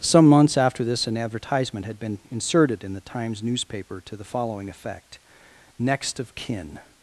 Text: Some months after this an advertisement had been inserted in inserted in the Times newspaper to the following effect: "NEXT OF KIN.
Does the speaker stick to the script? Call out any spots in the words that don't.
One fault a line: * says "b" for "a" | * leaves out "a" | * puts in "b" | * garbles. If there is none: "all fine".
* leaves out "inserted in"